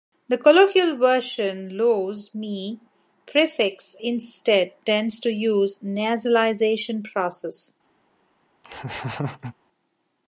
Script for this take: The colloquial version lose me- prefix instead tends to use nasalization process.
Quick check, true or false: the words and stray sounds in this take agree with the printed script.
false